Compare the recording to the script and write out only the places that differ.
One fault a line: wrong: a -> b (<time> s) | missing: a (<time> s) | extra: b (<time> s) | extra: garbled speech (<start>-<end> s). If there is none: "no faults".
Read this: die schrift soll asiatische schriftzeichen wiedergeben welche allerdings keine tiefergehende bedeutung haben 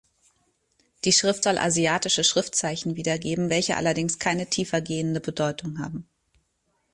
no faults